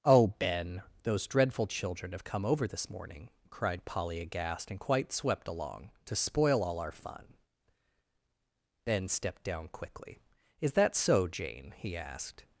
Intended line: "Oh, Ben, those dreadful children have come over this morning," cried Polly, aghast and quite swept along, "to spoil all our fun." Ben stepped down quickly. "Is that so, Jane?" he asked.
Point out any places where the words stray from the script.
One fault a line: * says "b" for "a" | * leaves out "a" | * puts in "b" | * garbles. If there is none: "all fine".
all fine